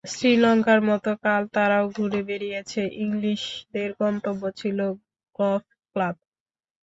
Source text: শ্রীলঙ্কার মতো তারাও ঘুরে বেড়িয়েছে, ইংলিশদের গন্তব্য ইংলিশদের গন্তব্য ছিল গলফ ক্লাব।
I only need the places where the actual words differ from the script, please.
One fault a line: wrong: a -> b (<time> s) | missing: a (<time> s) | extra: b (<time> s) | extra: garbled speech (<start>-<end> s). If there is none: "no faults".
extra: কাল (1.2 s)
missing: ইংলিশদের গন্তব্য (4.4 s)